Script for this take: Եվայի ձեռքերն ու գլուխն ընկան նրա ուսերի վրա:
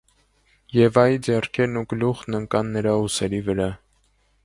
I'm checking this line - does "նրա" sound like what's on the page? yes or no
yes